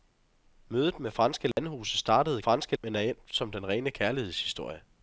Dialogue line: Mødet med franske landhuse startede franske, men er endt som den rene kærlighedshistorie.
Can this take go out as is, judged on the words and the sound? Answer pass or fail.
fail